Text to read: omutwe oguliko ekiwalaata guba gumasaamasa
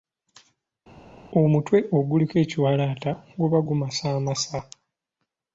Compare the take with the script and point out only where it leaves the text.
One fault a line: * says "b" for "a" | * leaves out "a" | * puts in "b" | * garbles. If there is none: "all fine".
all fine